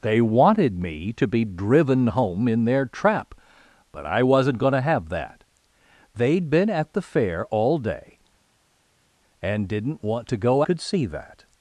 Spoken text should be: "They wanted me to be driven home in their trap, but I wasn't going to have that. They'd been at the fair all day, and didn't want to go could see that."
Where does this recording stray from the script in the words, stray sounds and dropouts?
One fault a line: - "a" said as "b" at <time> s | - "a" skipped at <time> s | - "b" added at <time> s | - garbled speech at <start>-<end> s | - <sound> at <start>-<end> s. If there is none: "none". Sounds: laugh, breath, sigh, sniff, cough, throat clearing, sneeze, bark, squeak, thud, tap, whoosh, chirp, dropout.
none